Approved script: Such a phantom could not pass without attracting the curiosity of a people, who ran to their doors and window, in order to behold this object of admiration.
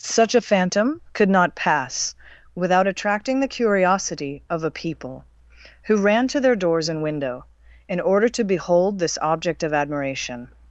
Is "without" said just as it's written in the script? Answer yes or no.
yes